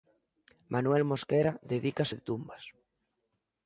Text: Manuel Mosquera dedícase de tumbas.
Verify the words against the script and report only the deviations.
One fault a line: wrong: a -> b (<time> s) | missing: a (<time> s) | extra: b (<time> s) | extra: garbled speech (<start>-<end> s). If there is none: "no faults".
no faults